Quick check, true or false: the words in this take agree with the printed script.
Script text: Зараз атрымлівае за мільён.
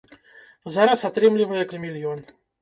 true